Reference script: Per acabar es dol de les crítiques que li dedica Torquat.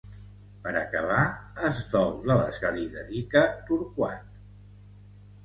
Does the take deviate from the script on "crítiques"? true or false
true